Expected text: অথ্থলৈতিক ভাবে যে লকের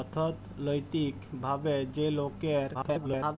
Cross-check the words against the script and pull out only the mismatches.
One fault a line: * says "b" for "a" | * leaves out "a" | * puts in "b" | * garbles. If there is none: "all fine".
* garbles